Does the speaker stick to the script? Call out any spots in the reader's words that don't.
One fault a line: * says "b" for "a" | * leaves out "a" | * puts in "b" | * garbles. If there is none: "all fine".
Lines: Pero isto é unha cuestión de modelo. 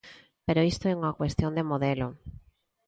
all fine